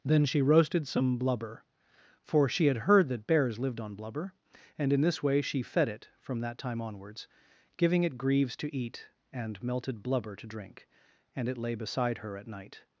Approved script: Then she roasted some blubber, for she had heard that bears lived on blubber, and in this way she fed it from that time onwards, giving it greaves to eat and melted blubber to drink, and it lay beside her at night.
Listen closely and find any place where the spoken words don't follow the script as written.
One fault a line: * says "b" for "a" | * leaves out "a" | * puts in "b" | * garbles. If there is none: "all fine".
all fine